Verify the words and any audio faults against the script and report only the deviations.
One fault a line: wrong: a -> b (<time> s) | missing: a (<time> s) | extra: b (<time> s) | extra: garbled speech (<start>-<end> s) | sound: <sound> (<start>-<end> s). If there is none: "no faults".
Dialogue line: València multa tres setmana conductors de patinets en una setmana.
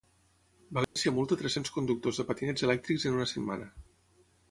sound: dropout (0.8-1.0 s)
wrong: setmana -> cents (1.6 s)
extra: elèctrics (2.7 s)